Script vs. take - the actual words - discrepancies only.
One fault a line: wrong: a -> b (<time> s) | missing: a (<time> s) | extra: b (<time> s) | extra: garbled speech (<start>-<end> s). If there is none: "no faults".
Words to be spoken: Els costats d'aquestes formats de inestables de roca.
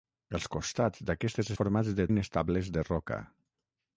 no faults